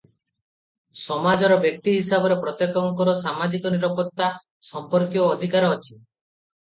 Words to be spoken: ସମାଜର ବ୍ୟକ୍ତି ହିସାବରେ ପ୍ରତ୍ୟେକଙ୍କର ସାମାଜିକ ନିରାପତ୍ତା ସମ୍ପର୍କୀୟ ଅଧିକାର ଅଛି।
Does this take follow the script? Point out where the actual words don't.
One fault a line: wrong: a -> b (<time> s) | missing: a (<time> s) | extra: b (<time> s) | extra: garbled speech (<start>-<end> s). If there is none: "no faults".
no faults